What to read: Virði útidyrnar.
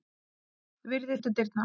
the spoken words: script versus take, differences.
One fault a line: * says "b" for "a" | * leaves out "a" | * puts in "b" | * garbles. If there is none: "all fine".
all fine